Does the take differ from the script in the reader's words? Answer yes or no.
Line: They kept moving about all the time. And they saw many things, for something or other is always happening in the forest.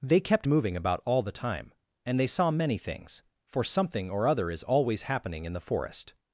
no